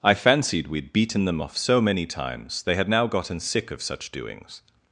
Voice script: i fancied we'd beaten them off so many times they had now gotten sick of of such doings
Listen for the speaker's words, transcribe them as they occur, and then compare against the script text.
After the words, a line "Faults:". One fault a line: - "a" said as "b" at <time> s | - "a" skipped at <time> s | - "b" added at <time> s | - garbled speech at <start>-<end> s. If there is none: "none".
i fancied we'd beaten them off so many times they had now gotten sick of such doings
Faults:
- "of" skipped at 3.8 s